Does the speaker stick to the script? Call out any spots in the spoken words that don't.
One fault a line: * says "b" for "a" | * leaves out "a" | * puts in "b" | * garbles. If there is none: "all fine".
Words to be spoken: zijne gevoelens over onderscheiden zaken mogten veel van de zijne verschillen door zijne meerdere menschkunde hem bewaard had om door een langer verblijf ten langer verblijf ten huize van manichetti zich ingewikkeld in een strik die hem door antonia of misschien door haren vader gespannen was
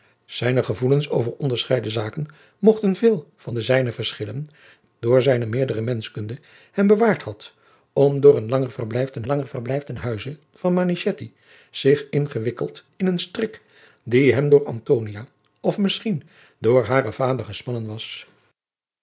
all fine